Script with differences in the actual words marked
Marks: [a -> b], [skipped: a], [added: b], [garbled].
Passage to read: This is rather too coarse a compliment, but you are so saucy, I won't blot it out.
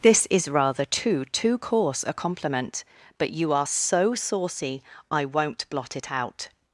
This is rather too [added: too] coarse a compliment, but you are so saucy, I won't blot it out.